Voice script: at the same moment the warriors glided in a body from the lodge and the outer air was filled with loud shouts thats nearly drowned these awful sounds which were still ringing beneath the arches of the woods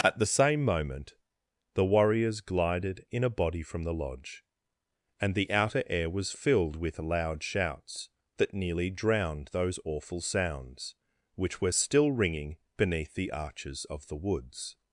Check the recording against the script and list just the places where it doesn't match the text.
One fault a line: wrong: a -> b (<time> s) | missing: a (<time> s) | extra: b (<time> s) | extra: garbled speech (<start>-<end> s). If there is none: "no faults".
wrong: thats -> that (8.4 s)
wrong: these -> those (9.5 s)